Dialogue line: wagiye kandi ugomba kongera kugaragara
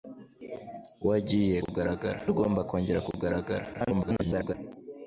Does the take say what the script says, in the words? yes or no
no